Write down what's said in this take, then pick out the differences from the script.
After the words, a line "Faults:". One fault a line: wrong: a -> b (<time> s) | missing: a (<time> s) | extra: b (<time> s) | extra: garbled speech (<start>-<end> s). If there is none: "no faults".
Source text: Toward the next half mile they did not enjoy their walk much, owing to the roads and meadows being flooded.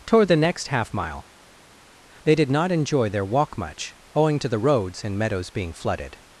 Toward the next half mile they did not enjoy their walk much, owing to the roads and meadows being flooded.
Faults:
no faults